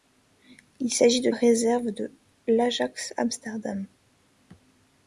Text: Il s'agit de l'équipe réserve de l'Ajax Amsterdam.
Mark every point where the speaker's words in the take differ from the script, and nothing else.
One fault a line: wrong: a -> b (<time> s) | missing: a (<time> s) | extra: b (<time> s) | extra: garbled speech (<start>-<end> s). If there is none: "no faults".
missing: l'équipe (1.3 s)